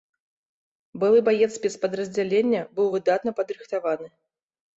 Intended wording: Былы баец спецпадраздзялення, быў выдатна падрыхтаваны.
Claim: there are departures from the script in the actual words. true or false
false